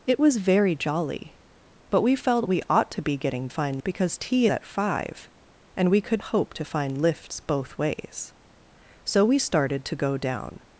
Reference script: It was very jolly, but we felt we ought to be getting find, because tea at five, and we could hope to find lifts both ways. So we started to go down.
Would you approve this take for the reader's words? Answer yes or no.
yes